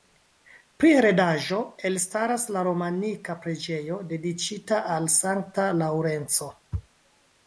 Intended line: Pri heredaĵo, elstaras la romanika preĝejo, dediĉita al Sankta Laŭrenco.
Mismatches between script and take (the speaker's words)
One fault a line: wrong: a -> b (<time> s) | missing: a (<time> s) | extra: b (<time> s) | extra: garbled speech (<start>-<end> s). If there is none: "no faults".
no faults